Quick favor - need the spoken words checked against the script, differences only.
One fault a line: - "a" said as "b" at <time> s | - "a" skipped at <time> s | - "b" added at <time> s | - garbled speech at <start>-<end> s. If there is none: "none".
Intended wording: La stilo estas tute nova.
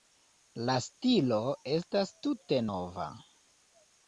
none